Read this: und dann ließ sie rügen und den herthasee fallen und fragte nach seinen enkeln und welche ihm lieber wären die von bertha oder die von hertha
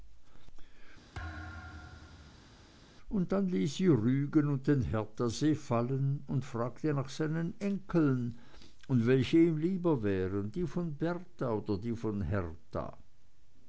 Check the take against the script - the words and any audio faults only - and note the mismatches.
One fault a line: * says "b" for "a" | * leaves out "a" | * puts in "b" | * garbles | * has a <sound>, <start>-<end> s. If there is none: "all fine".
* has a thud, 1.1-2.7 s